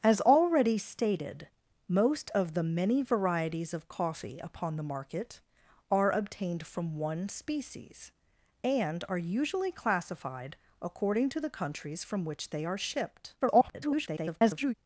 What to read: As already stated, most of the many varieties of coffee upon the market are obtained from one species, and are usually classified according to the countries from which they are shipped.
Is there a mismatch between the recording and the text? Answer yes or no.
yes